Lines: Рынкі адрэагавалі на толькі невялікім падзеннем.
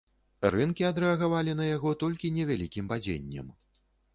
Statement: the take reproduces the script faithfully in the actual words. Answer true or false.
false